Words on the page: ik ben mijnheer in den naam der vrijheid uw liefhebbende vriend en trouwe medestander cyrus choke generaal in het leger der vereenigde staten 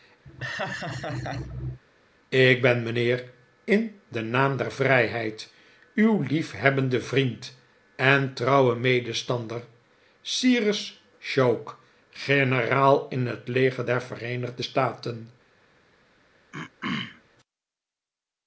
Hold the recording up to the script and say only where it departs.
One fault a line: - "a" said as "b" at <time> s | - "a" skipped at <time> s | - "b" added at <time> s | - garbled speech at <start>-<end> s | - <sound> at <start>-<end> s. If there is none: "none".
- laugh at 0.2-1.8 s
- throat clearing at 16.5-17.2 s